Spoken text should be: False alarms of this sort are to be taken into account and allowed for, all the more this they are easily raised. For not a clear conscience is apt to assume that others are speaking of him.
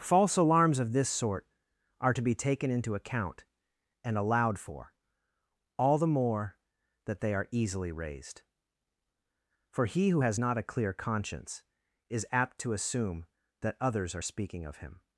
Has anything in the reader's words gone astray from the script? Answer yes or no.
yes